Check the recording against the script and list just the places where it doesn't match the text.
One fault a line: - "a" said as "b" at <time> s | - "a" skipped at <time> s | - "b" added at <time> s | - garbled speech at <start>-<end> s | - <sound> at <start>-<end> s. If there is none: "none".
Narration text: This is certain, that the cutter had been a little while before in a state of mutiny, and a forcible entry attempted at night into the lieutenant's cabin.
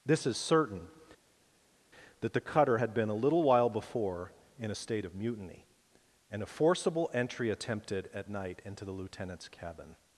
none